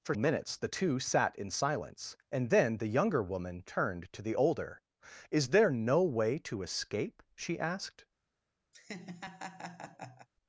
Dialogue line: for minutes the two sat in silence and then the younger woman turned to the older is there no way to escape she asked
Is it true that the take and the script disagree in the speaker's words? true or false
false